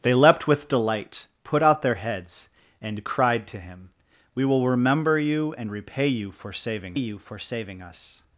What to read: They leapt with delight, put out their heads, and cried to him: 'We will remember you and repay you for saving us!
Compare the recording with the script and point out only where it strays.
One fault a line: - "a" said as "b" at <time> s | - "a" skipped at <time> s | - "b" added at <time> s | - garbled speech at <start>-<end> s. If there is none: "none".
- "you for saving" added at 6.9 s